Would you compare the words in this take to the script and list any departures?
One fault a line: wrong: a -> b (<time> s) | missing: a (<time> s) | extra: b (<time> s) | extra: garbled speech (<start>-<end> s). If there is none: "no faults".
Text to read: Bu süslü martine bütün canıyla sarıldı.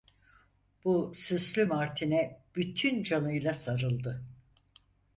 no faults